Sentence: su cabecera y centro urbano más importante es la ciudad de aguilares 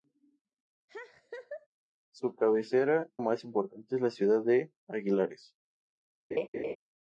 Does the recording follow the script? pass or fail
fail